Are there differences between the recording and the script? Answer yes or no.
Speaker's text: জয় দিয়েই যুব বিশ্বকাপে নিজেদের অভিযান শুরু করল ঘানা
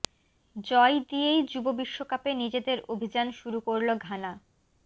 no